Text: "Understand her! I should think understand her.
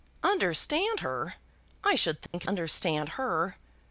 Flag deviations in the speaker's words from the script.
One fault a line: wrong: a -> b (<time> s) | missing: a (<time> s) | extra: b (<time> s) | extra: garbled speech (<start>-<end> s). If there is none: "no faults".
no faults